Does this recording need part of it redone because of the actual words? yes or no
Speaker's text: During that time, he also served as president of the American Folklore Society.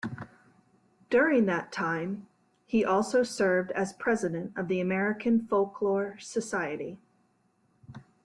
no